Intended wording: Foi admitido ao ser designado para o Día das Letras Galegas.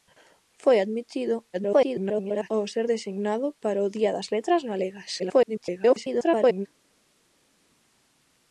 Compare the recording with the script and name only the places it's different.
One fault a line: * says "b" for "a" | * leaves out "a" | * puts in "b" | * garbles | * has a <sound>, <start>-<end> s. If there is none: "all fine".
* garbles
* garbles